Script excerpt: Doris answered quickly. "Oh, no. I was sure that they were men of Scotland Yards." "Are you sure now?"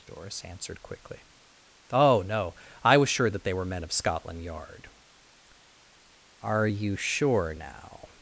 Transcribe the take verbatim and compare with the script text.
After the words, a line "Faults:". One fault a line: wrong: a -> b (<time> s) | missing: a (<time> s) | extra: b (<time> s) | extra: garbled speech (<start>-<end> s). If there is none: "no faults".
Doris answered quickly. "Oh, no. I was sure that they were men of Scotland Yard." "Are you sure now?"
Faults:
wrong: Yards -> Yard (4.4 s)